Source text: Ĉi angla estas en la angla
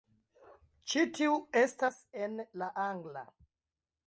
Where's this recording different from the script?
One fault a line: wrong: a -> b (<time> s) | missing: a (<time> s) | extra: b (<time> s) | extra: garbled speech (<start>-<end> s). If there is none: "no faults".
wrong: angla -> tiu (1.2 s)